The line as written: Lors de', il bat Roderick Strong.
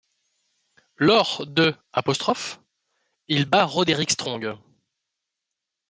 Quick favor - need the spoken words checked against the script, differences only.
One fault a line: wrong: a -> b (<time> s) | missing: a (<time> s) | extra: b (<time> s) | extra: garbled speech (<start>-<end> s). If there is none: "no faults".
no faults